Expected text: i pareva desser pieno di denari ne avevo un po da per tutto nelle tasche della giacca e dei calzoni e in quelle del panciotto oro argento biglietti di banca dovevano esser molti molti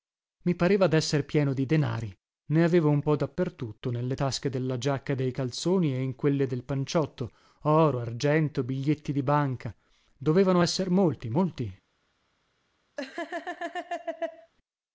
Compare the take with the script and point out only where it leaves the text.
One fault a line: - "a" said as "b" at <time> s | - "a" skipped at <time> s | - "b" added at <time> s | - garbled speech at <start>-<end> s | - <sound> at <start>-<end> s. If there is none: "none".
- laugh at 13.0-14.5 s